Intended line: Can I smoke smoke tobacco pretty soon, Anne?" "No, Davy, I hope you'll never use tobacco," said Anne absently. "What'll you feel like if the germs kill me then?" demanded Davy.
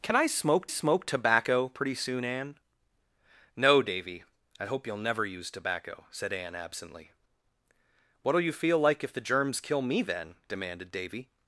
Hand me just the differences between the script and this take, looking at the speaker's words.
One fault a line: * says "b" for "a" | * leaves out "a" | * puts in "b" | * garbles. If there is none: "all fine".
all fine